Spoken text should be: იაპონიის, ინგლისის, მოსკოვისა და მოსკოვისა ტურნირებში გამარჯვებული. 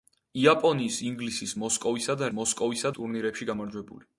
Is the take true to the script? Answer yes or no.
yes